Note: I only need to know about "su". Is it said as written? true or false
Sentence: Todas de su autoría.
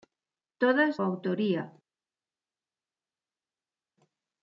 false